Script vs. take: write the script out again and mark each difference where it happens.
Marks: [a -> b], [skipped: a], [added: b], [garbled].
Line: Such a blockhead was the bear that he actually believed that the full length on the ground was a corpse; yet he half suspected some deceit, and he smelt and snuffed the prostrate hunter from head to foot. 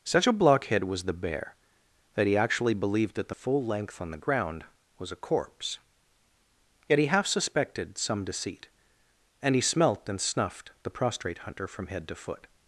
Such a blockhead was the bear that he actually believed that the full length on the ground was a corpse; yet he half suspected some deceit, and he smelt and snuffed the prostrate hunter from head to foot.